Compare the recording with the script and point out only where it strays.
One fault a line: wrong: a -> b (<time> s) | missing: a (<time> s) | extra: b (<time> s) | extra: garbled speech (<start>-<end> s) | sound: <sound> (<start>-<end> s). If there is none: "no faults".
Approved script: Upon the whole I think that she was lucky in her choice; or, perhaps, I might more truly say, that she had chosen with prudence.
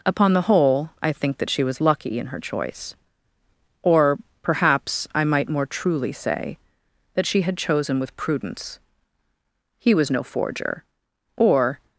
extra: He was no forger or (9.8 s)